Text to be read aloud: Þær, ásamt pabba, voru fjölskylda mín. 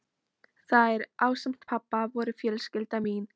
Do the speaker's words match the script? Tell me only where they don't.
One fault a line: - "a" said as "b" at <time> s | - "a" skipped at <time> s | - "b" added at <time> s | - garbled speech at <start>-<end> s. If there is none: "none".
none